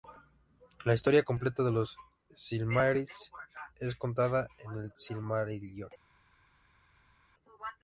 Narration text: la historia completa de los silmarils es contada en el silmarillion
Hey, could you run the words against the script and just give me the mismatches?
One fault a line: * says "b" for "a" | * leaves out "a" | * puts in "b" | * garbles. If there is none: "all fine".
all fine